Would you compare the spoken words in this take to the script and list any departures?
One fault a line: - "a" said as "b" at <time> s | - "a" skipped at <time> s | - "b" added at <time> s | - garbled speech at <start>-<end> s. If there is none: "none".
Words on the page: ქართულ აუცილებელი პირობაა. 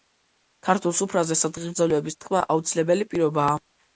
- "სუფრაზე სადღეგრძელოების თქმა" added at 1.0 s